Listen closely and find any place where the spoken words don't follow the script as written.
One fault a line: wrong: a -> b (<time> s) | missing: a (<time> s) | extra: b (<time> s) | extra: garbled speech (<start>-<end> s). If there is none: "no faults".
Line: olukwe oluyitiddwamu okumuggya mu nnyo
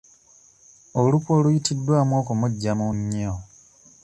no faults